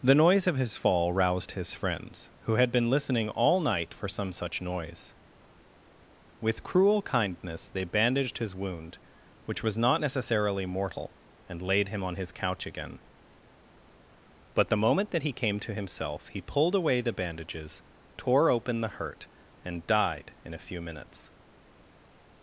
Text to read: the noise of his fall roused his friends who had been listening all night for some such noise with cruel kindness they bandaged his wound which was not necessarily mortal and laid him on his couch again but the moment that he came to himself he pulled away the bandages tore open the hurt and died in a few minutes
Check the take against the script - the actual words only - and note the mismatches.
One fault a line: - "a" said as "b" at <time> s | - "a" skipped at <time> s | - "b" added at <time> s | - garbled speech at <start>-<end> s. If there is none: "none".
none